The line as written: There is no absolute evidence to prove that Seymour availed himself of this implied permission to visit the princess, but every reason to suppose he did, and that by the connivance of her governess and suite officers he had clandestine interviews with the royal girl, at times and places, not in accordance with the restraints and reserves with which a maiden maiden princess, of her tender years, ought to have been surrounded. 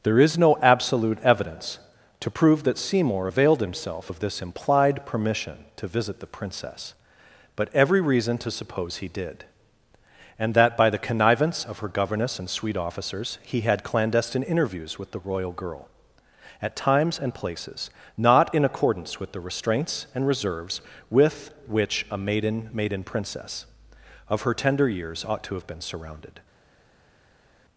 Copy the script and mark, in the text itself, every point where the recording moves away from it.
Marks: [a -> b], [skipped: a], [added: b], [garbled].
There is no absolute evidence to prove that Seymour availed himself of this implied permission to visit the princess, but every reason to suppose he did, and that by the connivance of her governess and suite officers he had clandestine interviews with the royal girl, at times and places, not in accordance with the restraints and reserves with which a maiden maiden princess, of her tender years, ought to have been surrounded.